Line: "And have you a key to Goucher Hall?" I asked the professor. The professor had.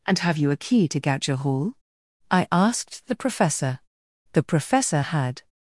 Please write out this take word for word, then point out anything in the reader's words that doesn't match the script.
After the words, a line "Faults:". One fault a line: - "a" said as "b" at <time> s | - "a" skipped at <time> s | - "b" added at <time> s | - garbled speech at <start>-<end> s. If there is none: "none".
"And have you a key to Goucher Hall?" I asked the professor. The professor had.
Faults:
none